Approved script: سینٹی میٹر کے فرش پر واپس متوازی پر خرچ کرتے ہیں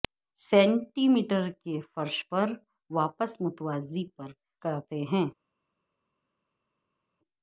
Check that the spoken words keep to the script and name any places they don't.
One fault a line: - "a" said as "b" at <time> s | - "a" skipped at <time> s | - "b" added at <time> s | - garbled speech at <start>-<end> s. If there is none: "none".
- "خرچ" skipped at 4.3 s